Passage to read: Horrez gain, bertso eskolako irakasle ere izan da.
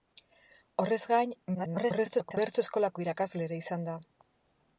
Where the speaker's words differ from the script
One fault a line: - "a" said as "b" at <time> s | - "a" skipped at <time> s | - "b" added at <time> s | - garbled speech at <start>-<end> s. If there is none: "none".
- garbled speech at 1.5-2.4 s